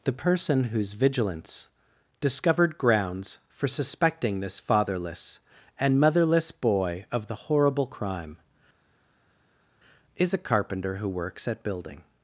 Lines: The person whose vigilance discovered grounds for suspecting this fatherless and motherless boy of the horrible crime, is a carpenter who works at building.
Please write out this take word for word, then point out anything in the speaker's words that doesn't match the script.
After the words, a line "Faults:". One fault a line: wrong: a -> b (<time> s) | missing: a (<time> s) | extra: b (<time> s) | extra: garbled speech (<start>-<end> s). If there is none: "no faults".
The person whose vigilance discovered grounds for suspecting this fatherless and motherless boy of the horrible crime, is a carpenter who works at building.
Faults:
no faults